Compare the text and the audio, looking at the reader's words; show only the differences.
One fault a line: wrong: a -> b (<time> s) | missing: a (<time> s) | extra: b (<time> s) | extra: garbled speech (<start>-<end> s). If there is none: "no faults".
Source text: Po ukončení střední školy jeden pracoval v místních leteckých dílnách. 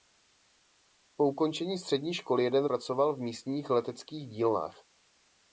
no faults